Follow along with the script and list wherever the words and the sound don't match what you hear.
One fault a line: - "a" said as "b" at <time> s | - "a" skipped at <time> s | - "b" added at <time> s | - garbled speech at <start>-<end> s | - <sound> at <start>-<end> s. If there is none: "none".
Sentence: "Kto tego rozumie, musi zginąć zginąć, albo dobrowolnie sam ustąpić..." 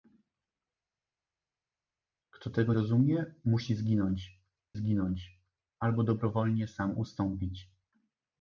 none